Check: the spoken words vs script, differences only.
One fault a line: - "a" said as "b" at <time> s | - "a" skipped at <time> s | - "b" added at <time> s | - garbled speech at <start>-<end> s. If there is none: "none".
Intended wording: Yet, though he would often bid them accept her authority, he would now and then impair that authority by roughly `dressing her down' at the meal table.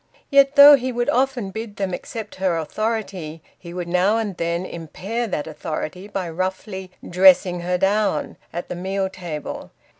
none